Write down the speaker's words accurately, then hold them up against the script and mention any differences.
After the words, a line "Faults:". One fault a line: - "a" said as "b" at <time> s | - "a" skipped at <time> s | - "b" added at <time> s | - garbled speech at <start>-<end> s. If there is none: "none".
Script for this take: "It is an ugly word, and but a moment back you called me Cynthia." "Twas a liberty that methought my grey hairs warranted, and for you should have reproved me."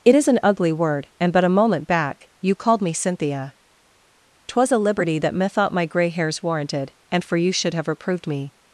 "It is an ugly word, and but a moment back you called me Cynthia." "Twas a liberty that methought my grey hairs warranted, and for you should have reproved me."
Faults:
none